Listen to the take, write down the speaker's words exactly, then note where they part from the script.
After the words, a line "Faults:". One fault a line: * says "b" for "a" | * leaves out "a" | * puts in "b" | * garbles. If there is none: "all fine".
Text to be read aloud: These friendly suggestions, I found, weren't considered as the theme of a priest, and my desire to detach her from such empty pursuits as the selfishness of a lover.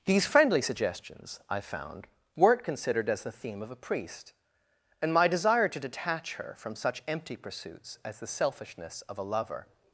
These friendly suggestions, I found, weren't considered as the theme of a priest, and my desire to detach her from such empty pursuits as the selfishness of a lover.
Faults:
all fine